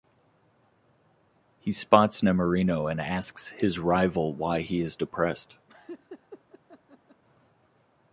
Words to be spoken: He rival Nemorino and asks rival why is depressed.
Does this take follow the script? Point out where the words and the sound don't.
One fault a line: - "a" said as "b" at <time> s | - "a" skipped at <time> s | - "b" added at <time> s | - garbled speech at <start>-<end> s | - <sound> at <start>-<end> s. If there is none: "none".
- "rival" said as "spots" at 1.7 s
- "his" added at 3.5 s
- "he" added at 4.6 s
- laugh at 5.7-7.2 s